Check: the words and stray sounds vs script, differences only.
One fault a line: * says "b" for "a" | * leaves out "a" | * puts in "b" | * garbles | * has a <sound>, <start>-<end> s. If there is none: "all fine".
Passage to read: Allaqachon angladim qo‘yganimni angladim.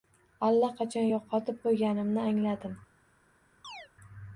* says "yo‘qotib" for "angladim"
* has a chirp, 3.6-3.9 s